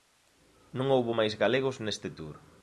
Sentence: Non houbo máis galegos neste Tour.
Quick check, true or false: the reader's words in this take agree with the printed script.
true